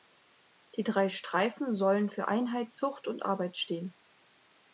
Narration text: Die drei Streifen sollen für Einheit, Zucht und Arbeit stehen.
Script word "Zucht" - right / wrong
right